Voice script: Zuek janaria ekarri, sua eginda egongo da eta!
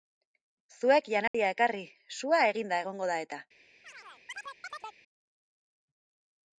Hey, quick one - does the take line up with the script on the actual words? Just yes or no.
yes